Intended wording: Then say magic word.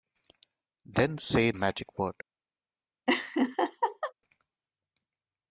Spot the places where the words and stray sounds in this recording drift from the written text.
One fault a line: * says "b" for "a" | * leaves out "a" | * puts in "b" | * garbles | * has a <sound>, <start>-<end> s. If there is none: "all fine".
* has a laugh, 3.1-4.1 s